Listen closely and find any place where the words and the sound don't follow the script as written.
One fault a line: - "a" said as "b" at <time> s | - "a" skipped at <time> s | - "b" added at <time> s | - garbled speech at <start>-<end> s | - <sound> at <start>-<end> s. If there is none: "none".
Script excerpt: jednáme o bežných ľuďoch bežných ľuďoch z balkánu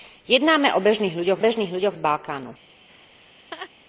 - laugh at 2.9-3.7 s